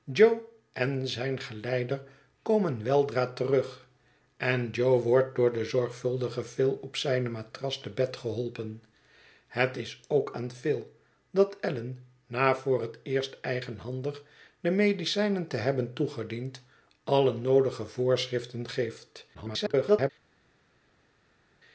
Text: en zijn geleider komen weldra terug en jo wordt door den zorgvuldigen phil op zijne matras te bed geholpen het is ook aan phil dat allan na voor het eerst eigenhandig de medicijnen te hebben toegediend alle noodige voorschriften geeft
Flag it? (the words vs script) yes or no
yes